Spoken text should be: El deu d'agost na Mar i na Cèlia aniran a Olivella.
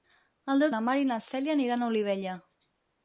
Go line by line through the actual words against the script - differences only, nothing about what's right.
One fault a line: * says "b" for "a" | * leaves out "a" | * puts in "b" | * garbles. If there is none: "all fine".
* leaves out "d'agost"